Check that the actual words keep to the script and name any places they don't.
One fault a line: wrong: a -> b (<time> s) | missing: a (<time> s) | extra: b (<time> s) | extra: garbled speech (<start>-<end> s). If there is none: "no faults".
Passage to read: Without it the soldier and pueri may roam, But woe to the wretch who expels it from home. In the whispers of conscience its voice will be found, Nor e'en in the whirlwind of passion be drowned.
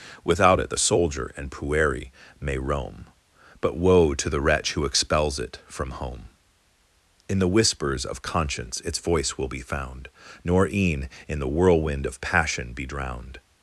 no faults